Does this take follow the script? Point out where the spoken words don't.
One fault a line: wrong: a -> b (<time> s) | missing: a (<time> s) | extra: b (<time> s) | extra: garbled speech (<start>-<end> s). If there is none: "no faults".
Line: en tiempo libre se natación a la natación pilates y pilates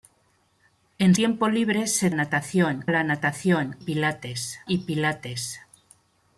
no faults